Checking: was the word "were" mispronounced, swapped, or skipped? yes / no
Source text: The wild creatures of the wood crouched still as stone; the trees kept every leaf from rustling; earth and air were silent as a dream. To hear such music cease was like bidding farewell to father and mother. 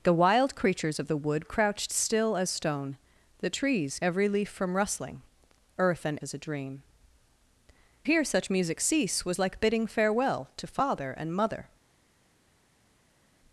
yes